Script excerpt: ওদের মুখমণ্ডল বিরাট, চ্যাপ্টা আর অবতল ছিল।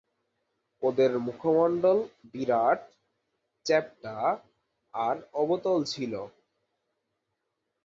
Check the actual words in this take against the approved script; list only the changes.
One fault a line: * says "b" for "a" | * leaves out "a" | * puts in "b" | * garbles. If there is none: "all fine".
all fine